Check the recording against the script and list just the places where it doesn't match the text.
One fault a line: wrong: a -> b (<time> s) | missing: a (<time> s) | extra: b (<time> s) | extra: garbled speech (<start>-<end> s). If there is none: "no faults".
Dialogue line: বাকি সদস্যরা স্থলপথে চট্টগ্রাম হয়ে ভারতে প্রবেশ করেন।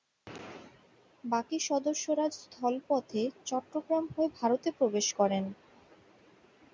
no faults